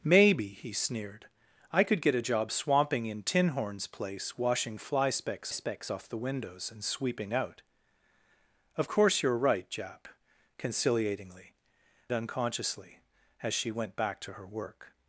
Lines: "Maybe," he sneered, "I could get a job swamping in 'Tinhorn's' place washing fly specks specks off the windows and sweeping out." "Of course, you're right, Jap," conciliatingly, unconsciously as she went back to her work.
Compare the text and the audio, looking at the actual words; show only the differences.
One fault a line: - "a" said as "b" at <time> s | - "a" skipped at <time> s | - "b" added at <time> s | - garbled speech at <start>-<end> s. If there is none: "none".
none